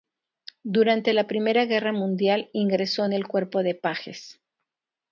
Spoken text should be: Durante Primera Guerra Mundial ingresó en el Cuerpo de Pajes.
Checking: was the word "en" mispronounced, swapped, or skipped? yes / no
no